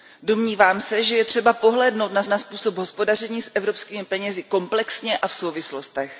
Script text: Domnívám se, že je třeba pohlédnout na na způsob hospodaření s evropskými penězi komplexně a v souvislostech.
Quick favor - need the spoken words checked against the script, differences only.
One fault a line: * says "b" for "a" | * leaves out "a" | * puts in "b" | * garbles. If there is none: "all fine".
all fine